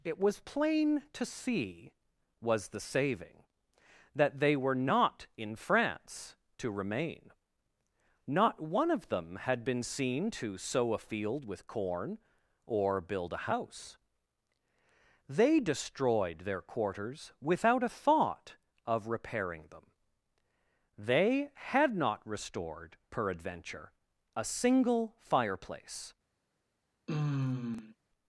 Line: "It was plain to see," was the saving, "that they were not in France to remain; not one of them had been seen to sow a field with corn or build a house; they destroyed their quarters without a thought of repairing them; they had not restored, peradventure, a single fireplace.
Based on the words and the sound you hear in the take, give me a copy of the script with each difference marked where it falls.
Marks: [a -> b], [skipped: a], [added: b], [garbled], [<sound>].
"It was plain to see," was the saving, "that they were not in France to remain; not one of them had been seen to sow a field with corn or build a house; they destroyed their quarters without a thought of repairing them; they had not restored, peradventure, a single fireplace. [sigh]